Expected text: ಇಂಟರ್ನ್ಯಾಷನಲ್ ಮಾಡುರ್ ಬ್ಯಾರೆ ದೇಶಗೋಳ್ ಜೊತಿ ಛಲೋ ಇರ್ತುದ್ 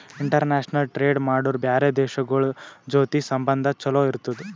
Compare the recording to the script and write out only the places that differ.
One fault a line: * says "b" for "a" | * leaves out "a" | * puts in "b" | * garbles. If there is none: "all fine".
* puts in "ಟ್ರೇಡ್"
* puts in "ಸಂಬಂಧ"